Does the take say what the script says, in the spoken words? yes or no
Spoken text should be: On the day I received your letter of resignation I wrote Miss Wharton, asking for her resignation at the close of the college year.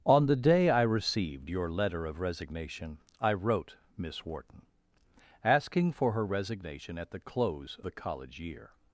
no